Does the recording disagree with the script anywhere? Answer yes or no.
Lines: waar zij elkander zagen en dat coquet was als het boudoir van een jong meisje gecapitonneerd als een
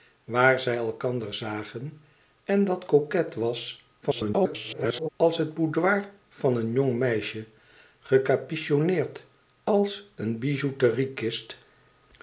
yes